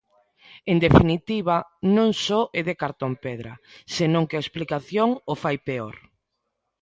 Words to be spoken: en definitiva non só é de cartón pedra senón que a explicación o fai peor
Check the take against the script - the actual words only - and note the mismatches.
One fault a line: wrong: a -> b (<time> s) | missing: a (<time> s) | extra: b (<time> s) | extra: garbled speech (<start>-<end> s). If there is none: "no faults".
no faults